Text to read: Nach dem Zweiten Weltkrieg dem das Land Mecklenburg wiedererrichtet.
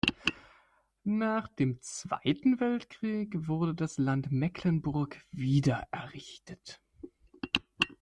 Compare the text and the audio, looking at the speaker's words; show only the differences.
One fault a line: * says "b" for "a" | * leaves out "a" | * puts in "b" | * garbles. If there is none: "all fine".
* says "wurde" for "dem"